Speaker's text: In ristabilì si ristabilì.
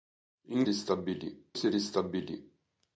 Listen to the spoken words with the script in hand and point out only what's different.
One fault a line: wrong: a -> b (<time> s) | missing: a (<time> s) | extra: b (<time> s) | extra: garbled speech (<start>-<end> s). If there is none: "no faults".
no faults